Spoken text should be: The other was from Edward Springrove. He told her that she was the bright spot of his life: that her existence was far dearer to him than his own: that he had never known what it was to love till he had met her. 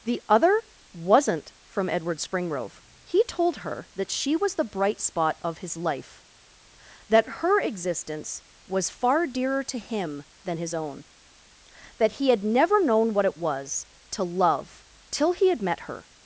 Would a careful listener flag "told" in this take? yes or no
no